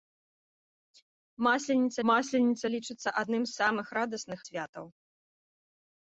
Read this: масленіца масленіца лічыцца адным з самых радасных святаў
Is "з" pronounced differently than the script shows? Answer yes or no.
no